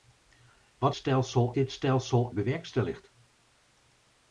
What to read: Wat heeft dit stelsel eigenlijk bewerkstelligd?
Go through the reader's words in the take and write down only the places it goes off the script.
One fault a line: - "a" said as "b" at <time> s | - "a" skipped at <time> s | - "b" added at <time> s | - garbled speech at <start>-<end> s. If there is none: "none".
- "heeft" said as "stelsel" at 0.9 s
- "eigenlijk" skipped at 2.3 s